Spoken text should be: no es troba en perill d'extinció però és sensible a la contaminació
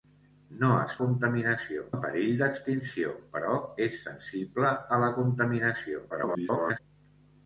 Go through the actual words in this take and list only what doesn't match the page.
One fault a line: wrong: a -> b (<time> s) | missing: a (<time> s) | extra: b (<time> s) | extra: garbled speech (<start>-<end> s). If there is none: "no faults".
wrong: troba -> contaminació (1.0 s)
extra: garbled speech (6.1-6.8 s)